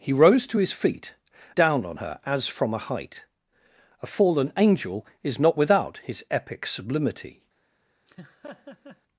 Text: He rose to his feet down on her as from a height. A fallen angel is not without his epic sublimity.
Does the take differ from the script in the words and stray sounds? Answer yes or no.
yes